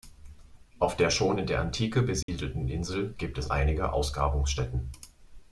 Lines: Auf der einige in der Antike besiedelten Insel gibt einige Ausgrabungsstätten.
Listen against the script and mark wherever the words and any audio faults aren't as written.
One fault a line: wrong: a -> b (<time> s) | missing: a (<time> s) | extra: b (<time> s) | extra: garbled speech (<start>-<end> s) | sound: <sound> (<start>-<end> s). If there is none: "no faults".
wrong: einige -> schon (1.1 s)
sound: dropout (2.2-2.3 s)
extra: es (3.4 s)